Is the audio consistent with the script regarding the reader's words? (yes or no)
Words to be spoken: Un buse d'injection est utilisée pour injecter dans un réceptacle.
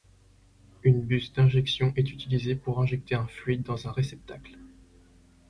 no